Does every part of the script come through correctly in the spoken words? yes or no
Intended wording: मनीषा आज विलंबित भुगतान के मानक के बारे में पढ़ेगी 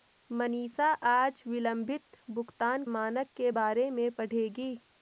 no